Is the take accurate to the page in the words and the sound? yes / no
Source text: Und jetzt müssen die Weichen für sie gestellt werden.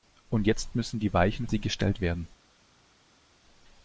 no